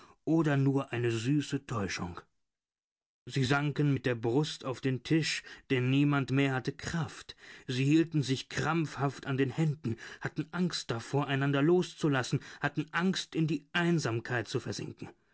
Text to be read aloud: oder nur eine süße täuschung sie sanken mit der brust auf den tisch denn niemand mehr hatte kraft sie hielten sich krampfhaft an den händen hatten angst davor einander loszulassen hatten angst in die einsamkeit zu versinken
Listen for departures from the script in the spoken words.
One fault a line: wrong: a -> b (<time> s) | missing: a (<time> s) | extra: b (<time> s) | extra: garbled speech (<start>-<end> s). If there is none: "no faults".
no faults